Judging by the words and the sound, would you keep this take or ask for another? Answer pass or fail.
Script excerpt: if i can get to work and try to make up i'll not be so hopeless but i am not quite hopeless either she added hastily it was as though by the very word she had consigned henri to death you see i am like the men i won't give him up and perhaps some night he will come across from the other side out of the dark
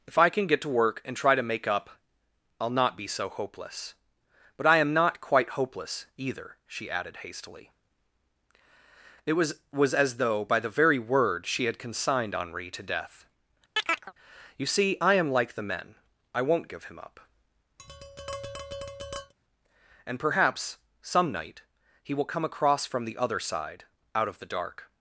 fail